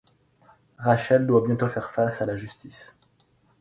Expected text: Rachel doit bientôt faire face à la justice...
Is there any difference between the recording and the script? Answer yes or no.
no